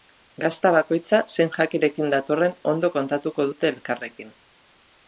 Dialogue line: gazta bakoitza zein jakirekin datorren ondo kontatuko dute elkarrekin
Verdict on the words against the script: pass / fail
pass